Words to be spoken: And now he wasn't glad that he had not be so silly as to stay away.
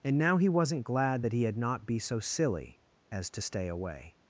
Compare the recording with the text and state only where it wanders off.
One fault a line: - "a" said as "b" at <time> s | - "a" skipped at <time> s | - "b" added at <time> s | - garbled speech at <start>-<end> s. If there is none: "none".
none